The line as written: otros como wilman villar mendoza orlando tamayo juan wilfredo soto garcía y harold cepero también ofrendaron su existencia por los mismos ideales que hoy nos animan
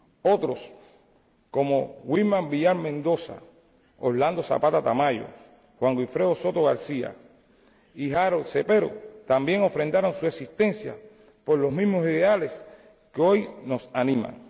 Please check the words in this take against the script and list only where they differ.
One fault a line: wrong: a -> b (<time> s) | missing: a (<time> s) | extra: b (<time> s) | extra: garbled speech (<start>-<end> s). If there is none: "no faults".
extra: zapata (4.4 s)